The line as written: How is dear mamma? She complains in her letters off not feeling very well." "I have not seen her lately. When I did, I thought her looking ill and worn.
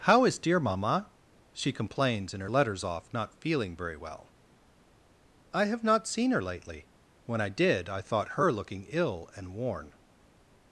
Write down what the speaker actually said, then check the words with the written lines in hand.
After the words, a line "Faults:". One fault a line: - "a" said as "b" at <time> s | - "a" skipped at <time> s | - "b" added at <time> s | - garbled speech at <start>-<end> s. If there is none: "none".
How is dear mamma? She complains in her letters off not feeling very well." "I have not seen her lately. When I did, I thought her looking ill and worn.
Faults:
none